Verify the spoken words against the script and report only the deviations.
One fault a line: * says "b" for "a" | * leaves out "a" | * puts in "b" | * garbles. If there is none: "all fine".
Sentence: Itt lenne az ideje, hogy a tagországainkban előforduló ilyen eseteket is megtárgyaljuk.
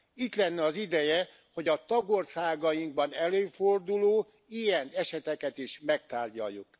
all fine